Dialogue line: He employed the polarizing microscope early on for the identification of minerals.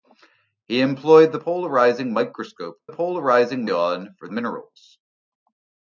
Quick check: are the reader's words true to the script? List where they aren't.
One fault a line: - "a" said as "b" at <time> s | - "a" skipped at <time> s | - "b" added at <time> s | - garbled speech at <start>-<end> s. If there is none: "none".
- "early" said as "polarizing" at 2.9 s
- "the identification of" skipped at 4.3 s